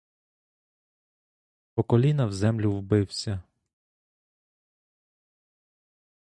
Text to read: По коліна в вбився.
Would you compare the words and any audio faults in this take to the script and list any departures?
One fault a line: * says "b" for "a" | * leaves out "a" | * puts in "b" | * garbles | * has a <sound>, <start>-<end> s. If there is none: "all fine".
* puts in "землю"